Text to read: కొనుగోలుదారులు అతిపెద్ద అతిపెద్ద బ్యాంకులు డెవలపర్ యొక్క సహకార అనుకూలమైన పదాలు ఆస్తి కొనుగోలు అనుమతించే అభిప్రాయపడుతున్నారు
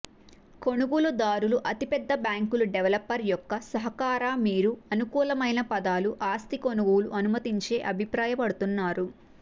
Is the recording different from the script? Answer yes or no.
yes